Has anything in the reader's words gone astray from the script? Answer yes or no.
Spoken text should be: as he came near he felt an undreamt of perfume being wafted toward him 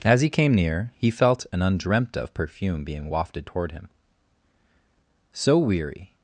yes